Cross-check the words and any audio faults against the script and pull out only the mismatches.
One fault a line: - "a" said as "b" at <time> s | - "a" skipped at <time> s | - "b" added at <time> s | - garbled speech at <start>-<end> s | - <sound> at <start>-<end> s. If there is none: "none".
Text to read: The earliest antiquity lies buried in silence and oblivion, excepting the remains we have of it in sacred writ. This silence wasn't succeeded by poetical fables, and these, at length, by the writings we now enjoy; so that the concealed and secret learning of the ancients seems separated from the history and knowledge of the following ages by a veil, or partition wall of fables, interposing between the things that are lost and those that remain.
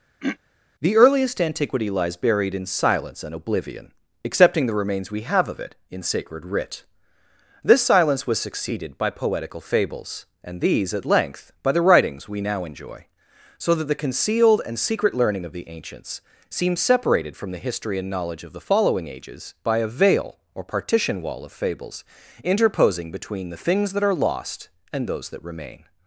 - throat clearing at 0.2-0.4 s
- "wasn't" said as "was" at 8.3 s